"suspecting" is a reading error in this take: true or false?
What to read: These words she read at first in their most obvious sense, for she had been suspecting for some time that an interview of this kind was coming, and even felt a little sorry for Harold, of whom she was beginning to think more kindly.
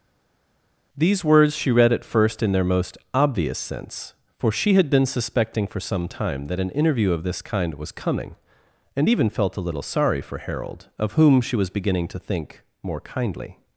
false